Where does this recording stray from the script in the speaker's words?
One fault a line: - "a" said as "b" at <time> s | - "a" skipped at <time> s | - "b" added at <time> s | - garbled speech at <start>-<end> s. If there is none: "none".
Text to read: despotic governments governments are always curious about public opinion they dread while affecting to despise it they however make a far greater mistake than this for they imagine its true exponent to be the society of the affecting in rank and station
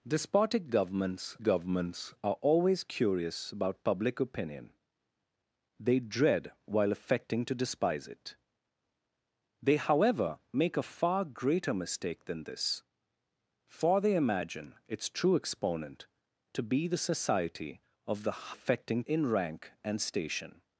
none